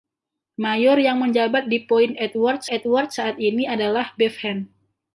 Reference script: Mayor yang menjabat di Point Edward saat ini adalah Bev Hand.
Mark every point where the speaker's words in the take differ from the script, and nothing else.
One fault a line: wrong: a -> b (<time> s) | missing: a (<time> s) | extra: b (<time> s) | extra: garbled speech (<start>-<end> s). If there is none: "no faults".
extra: Edward (2.7 s)